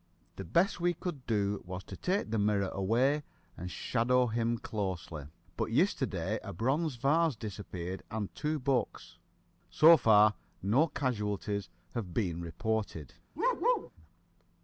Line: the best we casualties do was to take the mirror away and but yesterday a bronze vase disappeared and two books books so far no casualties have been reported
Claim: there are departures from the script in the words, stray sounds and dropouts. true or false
true